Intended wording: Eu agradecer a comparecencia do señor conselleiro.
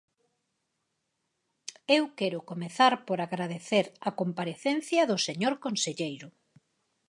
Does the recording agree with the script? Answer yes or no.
no